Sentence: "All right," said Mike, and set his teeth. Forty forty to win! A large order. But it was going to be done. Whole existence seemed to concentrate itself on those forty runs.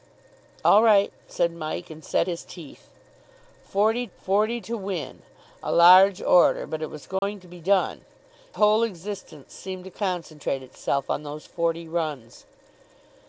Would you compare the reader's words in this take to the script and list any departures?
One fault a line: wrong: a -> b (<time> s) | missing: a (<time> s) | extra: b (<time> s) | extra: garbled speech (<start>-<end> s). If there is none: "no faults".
no faults